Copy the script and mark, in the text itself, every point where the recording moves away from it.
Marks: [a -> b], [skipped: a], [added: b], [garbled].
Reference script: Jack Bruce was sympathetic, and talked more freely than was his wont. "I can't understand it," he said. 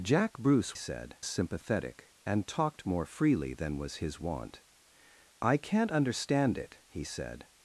Jack Bruce [was -> said] sympathetic, and talked more freely than was his wont. "I can't understand it," he said.